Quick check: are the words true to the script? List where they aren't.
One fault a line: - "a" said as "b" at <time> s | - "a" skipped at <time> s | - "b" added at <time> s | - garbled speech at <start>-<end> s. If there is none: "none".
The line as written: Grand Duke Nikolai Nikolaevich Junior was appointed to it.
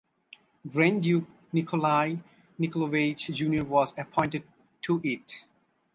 none